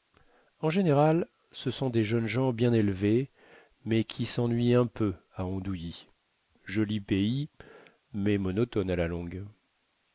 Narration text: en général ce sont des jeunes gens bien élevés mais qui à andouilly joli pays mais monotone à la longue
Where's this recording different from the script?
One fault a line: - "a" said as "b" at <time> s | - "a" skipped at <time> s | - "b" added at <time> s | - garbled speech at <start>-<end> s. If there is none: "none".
- "sennuient un peu" added at 4.2 s